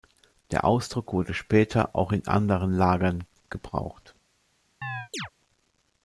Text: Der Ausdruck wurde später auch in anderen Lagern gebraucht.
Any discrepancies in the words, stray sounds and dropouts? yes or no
yes